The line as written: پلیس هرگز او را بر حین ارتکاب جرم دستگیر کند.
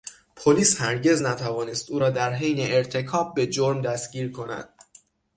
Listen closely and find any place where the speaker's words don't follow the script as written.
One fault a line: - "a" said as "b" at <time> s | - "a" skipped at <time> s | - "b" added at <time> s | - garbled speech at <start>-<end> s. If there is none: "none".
- "نتوانست" added at 1.2 s
- "بر" said as "در" at 2.1 s
- "به" added at 3.3 s